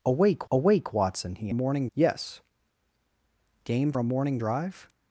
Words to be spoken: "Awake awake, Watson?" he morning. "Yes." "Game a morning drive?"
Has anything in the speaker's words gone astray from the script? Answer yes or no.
no